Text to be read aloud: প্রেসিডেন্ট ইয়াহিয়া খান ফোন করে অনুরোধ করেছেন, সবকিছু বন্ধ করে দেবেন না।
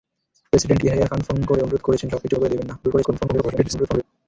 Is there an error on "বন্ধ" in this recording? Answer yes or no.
yes